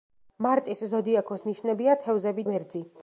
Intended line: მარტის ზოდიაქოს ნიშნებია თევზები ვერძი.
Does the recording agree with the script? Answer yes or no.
yes